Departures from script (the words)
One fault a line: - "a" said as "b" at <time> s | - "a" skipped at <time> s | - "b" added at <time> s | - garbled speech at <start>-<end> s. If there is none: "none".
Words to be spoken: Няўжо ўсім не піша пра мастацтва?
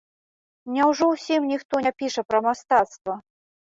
- "ніхто" added at 1.5 s